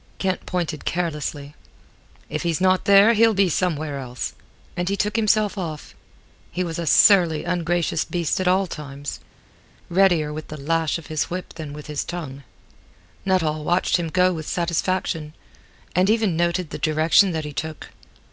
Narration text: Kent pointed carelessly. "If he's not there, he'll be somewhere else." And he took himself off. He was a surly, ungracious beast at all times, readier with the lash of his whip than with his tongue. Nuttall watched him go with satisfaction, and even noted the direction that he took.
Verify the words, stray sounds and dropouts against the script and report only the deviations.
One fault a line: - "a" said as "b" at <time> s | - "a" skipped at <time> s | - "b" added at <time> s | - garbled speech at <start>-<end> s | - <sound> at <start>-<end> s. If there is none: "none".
none